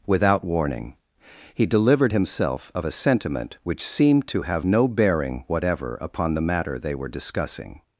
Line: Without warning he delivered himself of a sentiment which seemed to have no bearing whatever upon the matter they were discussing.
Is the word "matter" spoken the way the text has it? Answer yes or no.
yes